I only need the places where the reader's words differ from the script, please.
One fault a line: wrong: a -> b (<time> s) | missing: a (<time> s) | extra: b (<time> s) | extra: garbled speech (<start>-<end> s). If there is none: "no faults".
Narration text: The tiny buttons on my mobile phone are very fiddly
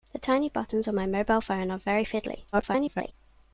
extra: garbled speech (2.5-3.1 s)